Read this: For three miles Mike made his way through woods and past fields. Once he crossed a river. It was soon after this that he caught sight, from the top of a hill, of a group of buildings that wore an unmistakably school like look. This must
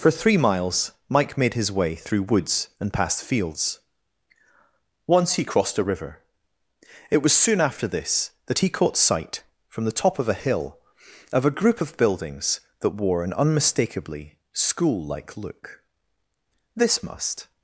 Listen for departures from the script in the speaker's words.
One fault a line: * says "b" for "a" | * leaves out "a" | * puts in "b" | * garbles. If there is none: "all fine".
all fine